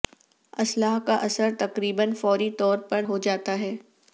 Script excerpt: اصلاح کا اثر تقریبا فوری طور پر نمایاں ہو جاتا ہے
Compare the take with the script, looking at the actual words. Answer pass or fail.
fail